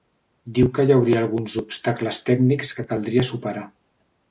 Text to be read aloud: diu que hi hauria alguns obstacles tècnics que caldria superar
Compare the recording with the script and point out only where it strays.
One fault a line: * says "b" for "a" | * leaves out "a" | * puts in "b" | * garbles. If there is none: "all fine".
all fine